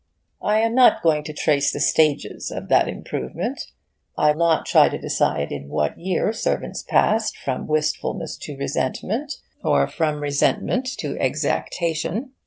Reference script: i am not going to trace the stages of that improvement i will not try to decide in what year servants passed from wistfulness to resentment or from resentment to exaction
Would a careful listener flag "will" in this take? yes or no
yes